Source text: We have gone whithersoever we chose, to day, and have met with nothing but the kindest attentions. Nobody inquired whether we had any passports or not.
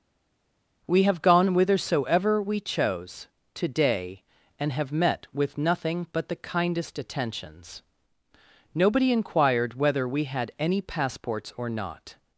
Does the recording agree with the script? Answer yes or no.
yes